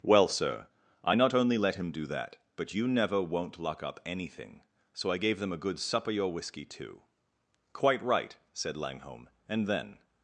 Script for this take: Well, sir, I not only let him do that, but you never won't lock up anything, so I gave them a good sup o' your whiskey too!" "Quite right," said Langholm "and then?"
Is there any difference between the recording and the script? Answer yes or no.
no